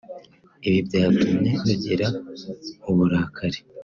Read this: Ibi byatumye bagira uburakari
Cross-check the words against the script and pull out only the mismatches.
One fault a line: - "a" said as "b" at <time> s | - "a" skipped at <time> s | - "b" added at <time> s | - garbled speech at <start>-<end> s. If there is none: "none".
none